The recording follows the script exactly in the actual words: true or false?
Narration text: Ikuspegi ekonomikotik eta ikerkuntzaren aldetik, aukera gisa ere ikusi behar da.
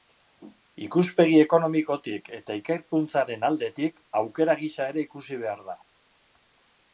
true